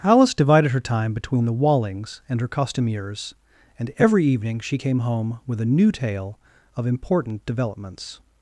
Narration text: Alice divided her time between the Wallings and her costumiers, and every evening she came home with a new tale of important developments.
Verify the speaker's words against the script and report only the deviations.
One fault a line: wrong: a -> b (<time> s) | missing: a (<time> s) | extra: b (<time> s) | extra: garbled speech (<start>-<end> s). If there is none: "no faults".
no faults